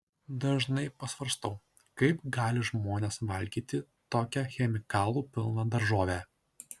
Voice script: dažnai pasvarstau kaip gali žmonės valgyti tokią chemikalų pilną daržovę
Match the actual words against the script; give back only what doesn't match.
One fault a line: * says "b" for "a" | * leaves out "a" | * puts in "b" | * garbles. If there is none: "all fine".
all fine